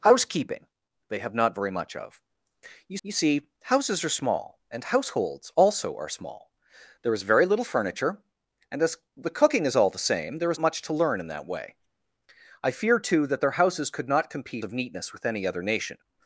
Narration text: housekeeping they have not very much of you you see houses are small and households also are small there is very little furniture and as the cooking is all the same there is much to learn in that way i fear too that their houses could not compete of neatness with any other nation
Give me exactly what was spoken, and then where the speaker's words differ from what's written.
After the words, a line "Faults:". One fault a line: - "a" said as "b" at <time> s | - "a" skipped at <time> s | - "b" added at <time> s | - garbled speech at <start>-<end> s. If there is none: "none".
housekeeping they have not very much of you you see houses are small and households also are small there is very little furniture and as the cooking is all the same there is much to learn in that way i fear too that their houses could not compete of neatness with any other nation
Faults:
none